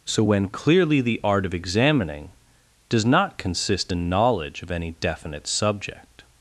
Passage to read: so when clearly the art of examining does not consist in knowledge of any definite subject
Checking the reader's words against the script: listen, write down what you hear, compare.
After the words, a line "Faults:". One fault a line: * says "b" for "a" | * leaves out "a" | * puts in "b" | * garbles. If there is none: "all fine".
so when clearly the art of examining does not consist in knowledge of any definite subject
Faults:
all fine